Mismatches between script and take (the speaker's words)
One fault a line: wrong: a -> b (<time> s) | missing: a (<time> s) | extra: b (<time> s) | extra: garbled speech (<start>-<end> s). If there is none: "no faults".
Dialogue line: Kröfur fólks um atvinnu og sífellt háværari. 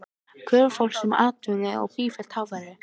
no faults